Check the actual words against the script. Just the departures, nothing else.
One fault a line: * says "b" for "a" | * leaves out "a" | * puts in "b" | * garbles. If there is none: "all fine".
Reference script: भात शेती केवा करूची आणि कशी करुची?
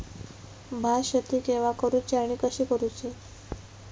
all fine